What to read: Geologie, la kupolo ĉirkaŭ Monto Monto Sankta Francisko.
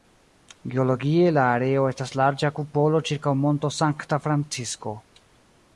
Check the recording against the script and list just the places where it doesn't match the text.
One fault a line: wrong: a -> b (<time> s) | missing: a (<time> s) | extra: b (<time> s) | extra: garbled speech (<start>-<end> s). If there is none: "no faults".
extra: areo estas larĝa (1.6 s)
missing: Monto (3.7 s)